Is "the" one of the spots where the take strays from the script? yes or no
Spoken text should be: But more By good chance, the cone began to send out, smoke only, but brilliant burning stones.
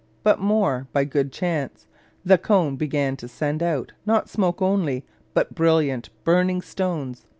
no